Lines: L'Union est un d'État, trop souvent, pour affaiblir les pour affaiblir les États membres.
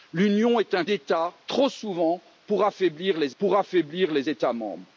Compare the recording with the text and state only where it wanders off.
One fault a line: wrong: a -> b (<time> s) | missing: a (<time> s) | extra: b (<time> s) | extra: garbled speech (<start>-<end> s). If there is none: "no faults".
no faults